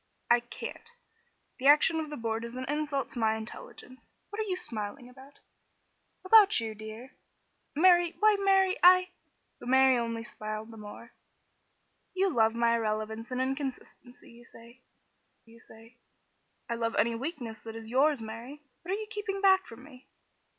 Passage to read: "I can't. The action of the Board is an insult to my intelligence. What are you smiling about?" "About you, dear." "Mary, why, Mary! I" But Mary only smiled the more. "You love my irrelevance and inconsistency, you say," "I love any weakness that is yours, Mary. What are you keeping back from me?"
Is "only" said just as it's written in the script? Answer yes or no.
yes